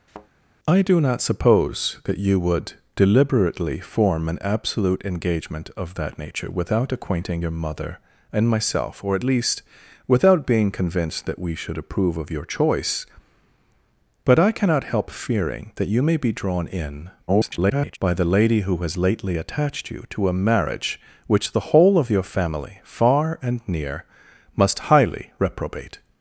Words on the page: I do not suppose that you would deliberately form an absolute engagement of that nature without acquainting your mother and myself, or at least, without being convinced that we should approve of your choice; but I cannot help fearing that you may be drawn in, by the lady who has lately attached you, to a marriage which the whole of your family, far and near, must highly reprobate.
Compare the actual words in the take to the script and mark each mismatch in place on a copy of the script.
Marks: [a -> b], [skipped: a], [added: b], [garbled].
I do not suppose that you would deliberately form an absolute engagement of that nature without acquainting your mother and myself, or at least, without being convinced that we should approve of your choice; but I cannot help fearing that you may be drawn in, [garbled] by the lady who has lately attached you, to a marriage which the whole of your family, far and near, must highly reprobate.